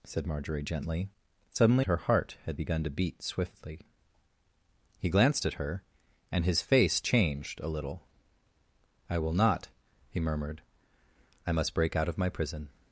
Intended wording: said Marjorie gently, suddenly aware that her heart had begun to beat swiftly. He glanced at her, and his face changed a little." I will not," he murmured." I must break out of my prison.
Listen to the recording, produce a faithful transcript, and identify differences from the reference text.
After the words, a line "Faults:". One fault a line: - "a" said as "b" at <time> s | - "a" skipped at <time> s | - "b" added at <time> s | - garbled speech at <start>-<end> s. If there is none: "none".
said Marjorie gently, suddenly her heart had begun to beat swiftly. He glanced at her, and his face changed a little." I will not," he murmured." I must break out of my prison.
Faults:
- "aware that" skipped at 1.9 s